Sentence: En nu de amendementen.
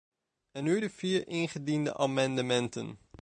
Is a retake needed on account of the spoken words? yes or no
yes